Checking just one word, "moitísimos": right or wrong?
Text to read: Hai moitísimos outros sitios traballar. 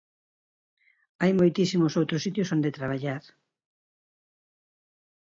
right